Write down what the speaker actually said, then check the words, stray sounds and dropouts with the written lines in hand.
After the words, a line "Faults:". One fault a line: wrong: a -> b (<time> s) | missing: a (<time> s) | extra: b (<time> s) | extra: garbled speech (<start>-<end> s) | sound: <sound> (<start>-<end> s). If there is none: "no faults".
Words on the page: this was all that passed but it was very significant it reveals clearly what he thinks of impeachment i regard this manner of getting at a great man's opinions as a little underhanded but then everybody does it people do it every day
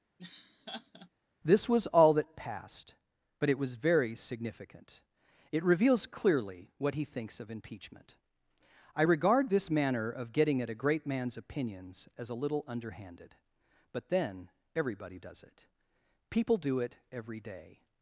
this was all that passed but it was very significant it reveals clearly what he thinks of impeachment i regard this manner of getting at a great man's opinions as a little underhanded but then everybody does it people do it every day
Faults:
sound: laugh (0.2-1.1 s)